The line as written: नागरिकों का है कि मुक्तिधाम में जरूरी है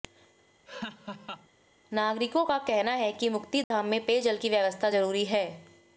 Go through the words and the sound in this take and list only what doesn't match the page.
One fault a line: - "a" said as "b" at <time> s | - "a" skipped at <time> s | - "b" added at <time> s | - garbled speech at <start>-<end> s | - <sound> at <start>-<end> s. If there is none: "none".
- laugh at 0.7-1.5 s
- "कहना" added at 2.6 s
- dropout at 3.6-3.7 s
- "पेयजल की व्यवस्था" added at 4.0 s